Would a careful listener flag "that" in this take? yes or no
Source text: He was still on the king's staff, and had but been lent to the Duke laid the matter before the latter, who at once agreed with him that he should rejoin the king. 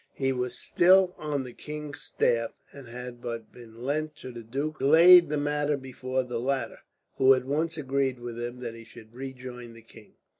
no